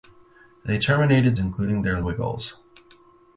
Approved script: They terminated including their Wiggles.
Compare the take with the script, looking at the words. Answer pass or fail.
pass